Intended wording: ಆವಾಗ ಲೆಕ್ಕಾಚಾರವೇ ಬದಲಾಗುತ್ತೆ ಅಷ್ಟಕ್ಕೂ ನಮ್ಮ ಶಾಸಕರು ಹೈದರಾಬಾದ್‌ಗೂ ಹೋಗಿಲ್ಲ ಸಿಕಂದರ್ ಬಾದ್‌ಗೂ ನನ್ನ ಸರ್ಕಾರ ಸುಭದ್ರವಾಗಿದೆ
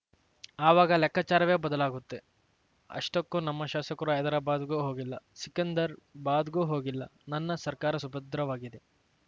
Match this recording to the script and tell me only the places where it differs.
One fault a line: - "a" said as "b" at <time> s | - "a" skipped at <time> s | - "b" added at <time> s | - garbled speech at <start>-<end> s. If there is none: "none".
- "ಹೋಗಿಲ್ಲ" added at 6.7 s